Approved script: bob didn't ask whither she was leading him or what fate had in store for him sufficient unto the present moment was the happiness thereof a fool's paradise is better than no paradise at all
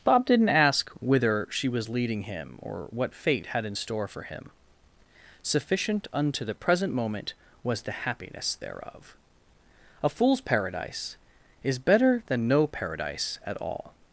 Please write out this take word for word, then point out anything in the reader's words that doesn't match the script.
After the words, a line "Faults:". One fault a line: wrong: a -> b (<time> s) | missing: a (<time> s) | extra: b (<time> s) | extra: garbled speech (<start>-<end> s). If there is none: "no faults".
bob didn't ask whither she was leading him or what fate had in store for him sufficient unto the present moment was the happiness thereof a fool's paradise is better than no paradise at all
Faults:
no faults